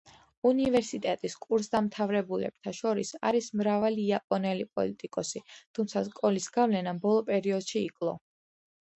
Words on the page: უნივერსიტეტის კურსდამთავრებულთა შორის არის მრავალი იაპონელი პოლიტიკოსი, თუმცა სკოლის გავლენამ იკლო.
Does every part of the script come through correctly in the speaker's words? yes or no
no